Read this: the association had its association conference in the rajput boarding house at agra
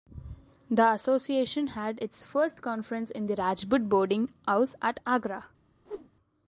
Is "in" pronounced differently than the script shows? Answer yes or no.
no